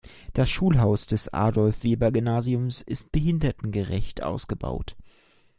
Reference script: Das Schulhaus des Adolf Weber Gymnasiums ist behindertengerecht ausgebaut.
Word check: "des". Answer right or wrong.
right